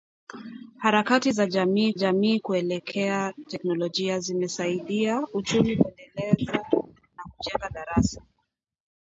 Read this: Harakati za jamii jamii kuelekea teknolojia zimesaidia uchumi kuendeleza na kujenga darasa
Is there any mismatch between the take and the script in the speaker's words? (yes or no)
no